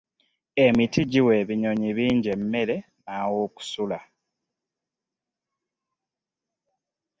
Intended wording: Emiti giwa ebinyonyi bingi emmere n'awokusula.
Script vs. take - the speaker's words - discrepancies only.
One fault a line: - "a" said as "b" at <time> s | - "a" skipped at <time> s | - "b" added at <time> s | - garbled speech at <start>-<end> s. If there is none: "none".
none